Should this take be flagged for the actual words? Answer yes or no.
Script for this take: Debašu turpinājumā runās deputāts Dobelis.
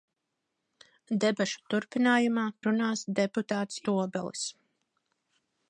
no